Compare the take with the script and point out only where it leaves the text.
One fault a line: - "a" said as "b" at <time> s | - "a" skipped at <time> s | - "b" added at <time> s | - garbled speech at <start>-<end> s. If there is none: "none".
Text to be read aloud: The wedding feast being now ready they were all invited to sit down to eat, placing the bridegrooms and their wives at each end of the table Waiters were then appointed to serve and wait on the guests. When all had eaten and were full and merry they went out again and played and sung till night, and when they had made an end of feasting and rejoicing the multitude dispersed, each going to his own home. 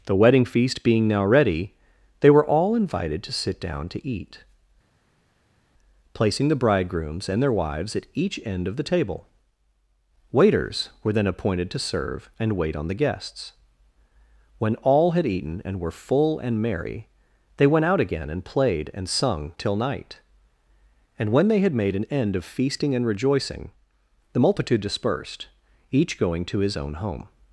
none